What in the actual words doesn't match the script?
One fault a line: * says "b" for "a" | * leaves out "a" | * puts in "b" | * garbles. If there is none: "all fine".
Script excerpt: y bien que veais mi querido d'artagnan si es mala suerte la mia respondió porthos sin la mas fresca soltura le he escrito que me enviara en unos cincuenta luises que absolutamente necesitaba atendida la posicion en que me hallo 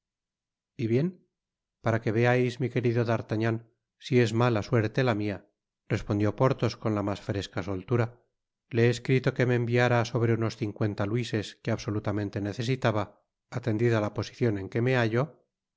* puts in "para"
* says "con" for "sin"
* says "sobre" for "en"